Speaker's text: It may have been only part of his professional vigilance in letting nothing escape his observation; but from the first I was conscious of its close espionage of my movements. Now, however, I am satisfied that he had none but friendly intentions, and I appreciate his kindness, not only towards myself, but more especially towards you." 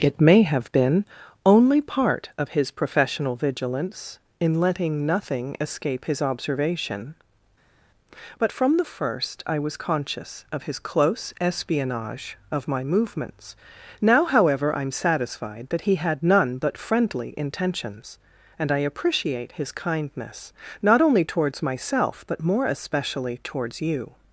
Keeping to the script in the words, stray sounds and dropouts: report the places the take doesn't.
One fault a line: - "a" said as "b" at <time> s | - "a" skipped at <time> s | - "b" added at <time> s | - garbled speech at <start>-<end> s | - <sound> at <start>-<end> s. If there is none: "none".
- "its" said as "his" at 10.6 s